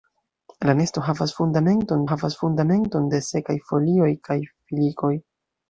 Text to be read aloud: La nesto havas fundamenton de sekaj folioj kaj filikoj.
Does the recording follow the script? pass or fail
fail